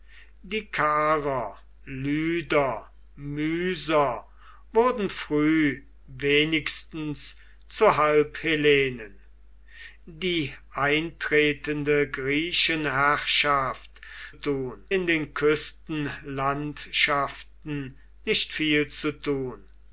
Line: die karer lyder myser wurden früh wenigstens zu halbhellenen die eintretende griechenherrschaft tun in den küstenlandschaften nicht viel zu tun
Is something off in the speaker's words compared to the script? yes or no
no